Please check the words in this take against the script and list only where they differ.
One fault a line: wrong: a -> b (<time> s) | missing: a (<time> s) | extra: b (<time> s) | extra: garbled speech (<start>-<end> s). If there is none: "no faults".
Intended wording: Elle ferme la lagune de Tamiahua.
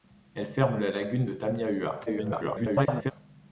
extra: garbled speech (2.1-3.1 s)